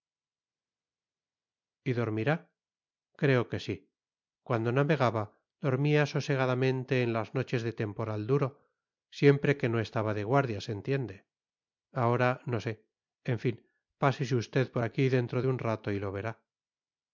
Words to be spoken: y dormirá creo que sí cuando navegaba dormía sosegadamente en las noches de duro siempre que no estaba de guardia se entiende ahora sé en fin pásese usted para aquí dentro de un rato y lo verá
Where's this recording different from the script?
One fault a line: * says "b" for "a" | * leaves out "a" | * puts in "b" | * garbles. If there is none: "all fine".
* puts in "temporal"
* puts in "no"
* says "por" for "para"